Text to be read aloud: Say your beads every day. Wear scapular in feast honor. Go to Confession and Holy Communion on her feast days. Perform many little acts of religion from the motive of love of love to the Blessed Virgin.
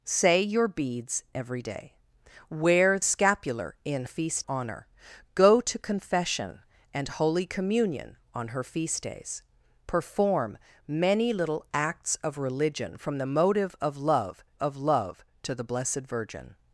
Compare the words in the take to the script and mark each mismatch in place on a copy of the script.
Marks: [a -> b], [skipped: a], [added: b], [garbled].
Say your beads every day. Wear scapular in feast honor. Go to Confession and Holy Communion on her feast days. Perform many little acts of religion from the motive of love of love to the Blessed Virgin.